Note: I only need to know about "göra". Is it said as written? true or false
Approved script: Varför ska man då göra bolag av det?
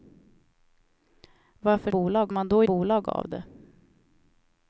false